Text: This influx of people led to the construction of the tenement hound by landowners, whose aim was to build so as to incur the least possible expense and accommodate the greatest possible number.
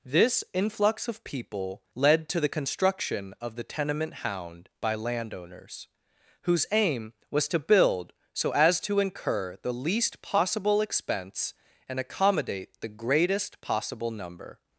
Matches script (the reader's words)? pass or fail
pass